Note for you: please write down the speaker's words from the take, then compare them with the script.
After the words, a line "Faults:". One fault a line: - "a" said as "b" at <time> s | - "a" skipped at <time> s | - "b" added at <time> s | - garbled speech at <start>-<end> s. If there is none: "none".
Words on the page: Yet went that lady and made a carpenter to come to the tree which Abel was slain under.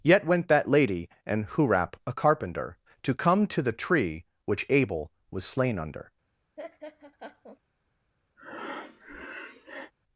Yet went that lady and hurap a carpenter to come to the tree which Abel was slain under.
Faults:
- "made" said as "hurap" at 1.4 s